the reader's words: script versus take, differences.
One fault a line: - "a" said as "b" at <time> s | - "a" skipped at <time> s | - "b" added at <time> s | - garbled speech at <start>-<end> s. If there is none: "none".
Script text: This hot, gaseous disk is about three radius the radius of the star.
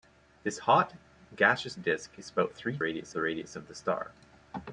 none